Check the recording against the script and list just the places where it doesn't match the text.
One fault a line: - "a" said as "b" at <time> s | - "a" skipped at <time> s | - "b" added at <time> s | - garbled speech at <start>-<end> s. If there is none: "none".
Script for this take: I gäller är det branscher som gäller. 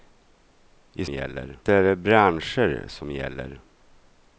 none